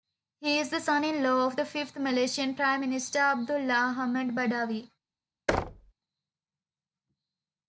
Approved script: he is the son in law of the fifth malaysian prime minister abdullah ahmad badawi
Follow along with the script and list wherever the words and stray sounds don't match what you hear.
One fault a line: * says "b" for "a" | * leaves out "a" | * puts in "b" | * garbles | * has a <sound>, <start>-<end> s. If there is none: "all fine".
* has a thud, 5.5-5.9 s